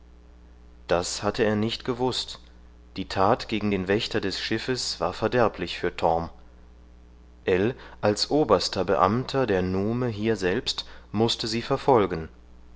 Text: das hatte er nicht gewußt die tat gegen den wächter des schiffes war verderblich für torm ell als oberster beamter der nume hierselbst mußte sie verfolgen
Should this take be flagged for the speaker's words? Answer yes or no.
no